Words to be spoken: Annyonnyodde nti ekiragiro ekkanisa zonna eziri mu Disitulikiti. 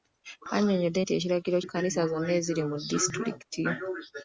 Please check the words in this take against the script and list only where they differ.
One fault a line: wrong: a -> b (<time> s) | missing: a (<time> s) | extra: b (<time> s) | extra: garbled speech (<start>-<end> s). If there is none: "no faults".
no faults